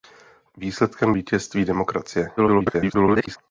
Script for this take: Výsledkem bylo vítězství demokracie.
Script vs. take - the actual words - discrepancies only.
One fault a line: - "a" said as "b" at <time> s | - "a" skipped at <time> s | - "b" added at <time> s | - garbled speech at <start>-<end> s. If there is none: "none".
- "bylo" skipped at 1.1 s
- garbled speech at 2.4-3.4 s